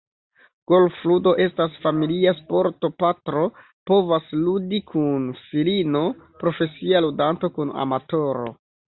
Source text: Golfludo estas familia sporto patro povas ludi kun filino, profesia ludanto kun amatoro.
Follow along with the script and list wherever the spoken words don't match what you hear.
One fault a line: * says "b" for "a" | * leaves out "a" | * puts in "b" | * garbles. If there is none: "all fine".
all fine